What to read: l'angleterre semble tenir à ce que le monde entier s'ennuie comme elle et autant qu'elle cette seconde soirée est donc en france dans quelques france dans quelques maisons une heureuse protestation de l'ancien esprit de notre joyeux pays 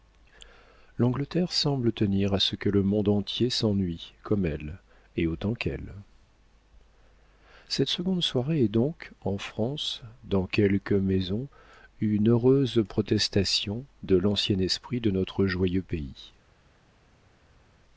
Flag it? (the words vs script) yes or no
yes